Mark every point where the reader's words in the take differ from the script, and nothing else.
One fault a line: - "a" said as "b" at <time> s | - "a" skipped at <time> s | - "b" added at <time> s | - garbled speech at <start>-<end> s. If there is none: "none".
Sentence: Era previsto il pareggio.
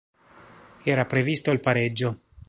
none